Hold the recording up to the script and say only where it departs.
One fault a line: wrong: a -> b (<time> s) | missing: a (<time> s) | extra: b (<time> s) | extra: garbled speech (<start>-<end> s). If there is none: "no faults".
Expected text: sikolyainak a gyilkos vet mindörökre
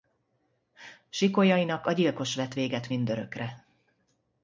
extra: véget (2.5 s)